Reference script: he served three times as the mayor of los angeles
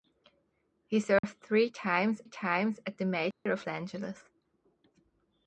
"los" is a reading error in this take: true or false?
true